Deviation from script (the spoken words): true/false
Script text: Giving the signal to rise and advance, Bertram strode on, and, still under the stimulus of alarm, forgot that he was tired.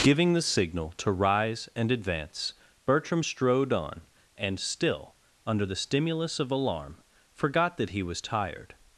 false